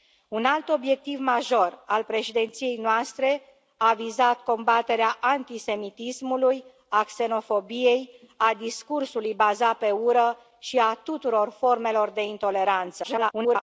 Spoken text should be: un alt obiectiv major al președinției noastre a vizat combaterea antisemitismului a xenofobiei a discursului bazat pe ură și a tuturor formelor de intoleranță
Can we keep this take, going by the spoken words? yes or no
no